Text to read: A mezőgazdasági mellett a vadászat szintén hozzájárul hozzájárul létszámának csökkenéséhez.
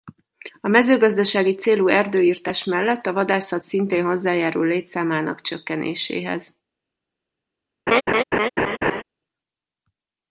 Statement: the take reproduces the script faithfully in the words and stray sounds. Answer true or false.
false